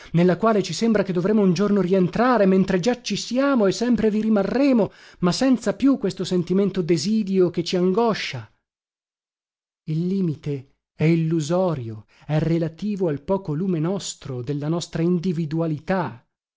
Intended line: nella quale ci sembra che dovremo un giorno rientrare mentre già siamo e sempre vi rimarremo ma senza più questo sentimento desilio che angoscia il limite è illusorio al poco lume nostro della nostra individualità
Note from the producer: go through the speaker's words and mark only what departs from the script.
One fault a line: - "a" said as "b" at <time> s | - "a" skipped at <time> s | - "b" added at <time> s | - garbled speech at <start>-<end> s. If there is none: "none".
- "ci" added at 3.0 s
- "ci" added at 7.6 s
- "è relativo" added at 12.2 s